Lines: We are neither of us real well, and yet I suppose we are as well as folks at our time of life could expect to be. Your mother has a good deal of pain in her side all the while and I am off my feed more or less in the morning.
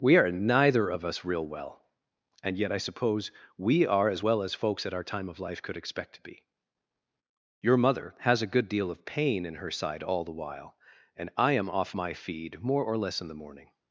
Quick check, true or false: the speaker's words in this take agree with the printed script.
true